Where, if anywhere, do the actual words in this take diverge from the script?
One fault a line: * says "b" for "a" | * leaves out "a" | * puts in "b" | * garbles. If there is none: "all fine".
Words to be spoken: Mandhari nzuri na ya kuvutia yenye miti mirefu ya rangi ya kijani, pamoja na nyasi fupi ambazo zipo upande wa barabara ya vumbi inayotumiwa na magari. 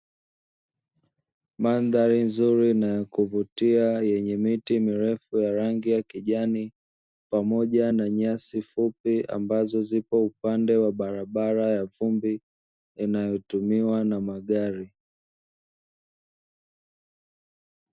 all fine